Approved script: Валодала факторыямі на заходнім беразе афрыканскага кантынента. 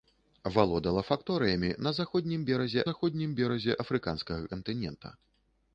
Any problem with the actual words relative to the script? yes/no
yes